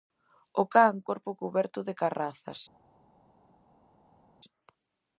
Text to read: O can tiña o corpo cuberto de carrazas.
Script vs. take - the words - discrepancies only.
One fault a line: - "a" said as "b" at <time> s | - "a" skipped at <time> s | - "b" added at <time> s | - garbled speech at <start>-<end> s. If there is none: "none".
- "tiña" skipped at 0.9 s